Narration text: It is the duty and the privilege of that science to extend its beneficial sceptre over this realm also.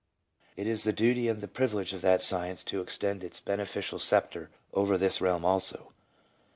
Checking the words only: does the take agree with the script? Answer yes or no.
yes